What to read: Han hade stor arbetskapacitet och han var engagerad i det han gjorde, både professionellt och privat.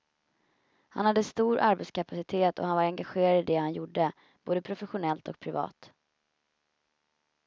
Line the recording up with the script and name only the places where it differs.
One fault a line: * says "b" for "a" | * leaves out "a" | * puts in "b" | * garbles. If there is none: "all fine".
all fine